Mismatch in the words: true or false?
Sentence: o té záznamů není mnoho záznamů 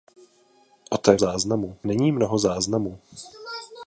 false